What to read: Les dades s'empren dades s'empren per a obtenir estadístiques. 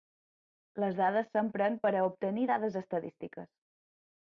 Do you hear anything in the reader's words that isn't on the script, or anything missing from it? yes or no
yes